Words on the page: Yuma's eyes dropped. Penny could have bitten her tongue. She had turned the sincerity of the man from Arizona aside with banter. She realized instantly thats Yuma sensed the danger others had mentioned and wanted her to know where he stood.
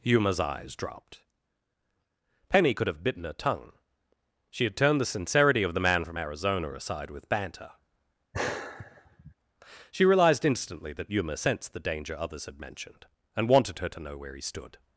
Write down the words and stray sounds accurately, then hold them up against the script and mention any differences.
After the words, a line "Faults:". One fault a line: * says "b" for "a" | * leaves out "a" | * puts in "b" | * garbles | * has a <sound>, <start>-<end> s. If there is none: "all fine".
Yuma's eyes dropped. Penny could have bitten her tongue. She had turned the sincerity of the man from Arizona aside with banter. She realized instantly that Yuma sensed the danger others had mentioned and wanted her to know where he stood.
Faults:
* has a sigh, 8.3-9.3 s
* says "that" for "thats"